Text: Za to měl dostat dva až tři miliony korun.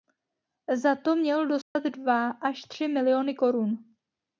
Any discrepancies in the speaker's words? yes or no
no